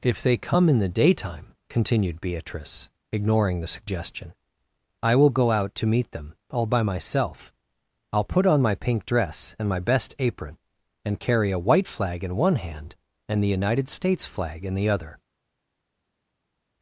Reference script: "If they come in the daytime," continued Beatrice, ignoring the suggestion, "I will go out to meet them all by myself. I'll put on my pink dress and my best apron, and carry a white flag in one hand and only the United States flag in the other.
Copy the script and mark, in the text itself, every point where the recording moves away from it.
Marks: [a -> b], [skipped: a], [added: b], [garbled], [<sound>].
"If they come in the daytime," continued Beatrice, ignoring the suggestion, "I will go out to meet them all by myself. I'll put on my pink dress and my best apron, and carry a white flag in one hand and [skipped: only] the United States flag in the other.